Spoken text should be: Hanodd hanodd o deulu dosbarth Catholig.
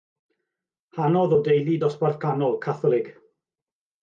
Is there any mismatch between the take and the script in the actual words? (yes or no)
yes